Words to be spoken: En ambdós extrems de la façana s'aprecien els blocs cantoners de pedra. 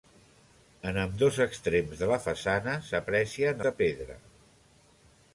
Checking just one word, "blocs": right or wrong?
wrong